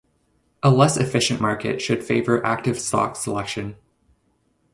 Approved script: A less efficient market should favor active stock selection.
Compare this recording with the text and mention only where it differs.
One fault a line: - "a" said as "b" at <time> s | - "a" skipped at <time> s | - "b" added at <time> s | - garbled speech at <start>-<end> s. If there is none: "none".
none